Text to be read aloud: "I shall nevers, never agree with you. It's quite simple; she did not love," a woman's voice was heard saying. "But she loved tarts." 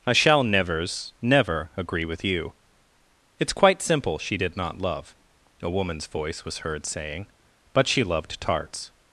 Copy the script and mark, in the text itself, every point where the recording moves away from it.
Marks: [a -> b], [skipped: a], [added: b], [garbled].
"I shall nevers, never agree with you. It's quite simple; she did not love," a woman's voice was heard saying. "But she loved tarts."